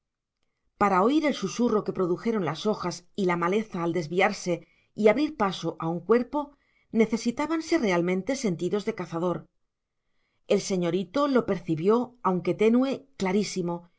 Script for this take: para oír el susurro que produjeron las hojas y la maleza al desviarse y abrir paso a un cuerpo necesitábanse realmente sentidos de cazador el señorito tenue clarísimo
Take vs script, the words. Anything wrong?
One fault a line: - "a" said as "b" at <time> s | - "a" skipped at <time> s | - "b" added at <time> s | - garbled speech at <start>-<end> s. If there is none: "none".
- "lo percibió aunque" added at 11.3 s